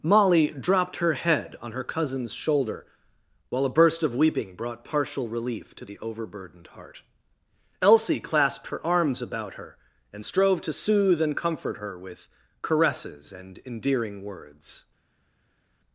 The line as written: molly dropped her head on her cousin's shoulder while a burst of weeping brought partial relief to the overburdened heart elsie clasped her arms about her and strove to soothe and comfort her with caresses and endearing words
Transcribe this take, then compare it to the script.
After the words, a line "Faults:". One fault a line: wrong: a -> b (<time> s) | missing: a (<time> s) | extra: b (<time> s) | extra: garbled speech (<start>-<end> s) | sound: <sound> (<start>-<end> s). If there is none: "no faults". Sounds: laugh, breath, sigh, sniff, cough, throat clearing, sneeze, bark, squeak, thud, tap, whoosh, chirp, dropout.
molly dropped her head on her cousin's shoulder while a burst of weeping brought partial relief to the overburdened heart elsie clasped her arms about her and strove to soothe and comfort her with caresses and endearing words
Faults:
no faults